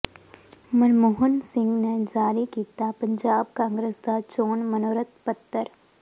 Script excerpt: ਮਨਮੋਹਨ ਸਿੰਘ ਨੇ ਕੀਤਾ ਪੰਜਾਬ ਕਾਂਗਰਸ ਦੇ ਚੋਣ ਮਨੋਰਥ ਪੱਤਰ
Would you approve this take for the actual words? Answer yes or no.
no